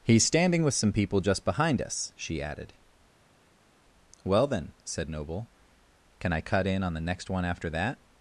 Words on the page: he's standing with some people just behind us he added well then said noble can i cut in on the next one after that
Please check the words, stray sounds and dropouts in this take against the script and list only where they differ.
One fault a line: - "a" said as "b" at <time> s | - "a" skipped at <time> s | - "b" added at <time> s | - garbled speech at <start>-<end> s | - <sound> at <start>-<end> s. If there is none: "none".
- "he" said as "she" at 2.1 s